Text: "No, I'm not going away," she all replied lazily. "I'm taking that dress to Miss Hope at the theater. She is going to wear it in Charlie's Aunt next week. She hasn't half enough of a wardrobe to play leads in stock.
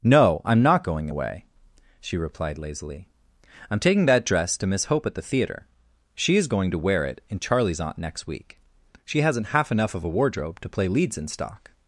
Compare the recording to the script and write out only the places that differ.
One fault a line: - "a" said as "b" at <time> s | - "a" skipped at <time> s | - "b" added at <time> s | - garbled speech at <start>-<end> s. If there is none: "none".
- "all" skipped at 2.2 s